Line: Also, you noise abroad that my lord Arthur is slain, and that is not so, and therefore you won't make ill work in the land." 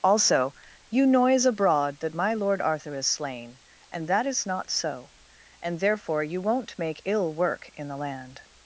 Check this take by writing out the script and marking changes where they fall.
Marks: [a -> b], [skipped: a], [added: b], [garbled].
Also, you noise abroad that my lord Arthur is slain, and that is not so, and therefore you won't make ill work in the land."